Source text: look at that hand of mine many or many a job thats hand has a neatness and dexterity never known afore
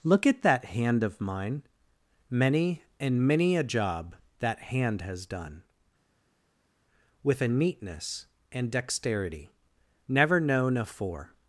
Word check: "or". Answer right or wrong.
wrong